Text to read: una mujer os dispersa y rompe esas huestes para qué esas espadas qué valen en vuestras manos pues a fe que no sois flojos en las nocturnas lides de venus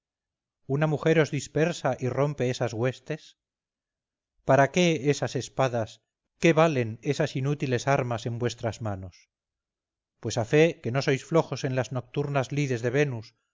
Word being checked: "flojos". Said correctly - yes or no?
yes